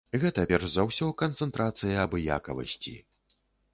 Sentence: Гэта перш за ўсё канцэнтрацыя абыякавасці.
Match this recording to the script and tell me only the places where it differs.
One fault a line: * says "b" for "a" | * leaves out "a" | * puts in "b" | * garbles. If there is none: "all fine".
all fine